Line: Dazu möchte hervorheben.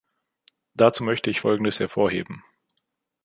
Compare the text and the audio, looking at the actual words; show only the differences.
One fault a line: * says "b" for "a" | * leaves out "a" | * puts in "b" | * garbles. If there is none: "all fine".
* puts in "ich Folgendes"